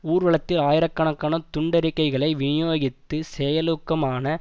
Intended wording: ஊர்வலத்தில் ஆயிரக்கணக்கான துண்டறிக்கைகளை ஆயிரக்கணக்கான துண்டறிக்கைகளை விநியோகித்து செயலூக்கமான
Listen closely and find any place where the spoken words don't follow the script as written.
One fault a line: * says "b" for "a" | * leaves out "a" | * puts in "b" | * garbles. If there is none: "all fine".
* leaves out "ஆயிரக்கணக்கான துண்டறிக்கைகளை"